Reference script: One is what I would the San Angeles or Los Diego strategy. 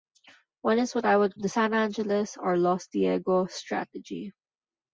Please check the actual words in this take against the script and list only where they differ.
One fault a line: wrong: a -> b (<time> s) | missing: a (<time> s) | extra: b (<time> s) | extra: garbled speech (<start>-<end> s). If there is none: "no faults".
no faults